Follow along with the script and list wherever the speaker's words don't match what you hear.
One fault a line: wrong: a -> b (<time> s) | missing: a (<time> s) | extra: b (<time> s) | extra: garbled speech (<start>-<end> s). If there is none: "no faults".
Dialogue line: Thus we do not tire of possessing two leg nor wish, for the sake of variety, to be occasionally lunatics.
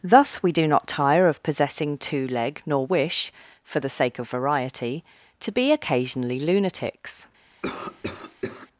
no faults